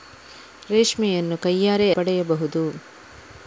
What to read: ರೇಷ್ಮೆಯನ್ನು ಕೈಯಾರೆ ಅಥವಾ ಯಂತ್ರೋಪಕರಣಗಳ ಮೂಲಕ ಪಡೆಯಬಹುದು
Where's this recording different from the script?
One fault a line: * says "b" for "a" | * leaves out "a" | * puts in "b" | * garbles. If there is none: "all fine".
* leaves out "ಅಥವಾ ಯಂತ್ರೋಪಕರಣಗಳ ಮೂಲಕ"